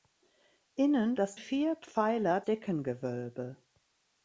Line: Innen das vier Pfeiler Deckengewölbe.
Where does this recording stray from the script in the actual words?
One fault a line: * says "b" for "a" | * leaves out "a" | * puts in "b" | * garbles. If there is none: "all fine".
all fine